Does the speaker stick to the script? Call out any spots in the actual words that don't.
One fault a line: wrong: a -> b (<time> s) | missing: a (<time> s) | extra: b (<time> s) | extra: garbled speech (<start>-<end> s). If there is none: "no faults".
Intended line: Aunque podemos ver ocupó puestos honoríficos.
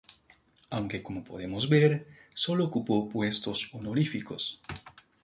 extra: como (1.0 s)
extra: solo (2.3 s)